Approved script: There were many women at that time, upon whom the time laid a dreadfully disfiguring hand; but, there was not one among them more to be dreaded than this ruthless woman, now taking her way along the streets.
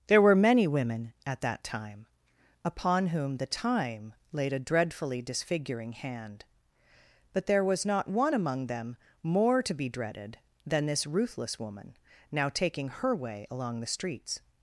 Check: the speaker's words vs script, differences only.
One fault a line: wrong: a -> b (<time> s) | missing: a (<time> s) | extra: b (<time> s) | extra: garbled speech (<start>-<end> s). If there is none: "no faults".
no faults